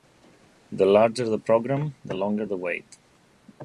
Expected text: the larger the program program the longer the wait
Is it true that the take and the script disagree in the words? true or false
true